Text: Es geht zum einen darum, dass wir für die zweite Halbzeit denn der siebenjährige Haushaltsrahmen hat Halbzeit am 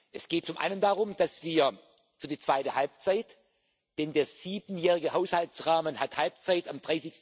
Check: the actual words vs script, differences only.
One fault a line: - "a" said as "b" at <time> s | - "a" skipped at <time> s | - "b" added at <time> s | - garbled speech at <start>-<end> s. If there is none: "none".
none